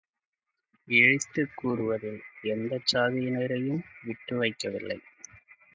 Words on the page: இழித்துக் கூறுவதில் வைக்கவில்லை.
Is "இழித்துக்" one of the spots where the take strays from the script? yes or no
no